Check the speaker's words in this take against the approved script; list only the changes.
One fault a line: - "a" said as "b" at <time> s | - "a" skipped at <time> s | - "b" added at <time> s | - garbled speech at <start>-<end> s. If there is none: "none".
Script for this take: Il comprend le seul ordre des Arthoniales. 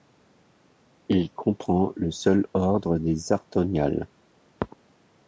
none